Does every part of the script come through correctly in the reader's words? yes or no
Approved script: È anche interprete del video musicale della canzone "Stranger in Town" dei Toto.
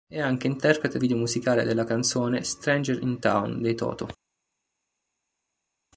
no